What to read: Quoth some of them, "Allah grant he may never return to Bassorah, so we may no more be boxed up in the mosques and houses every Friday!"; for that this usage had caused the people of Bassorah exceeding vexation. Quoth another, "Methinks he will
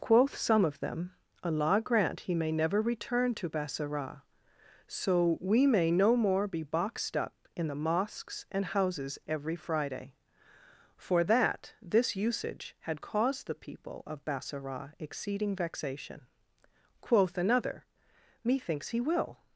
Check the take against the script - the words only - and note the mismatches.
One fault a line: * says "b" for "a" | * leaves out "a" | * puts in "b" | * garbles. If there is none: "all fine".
all fine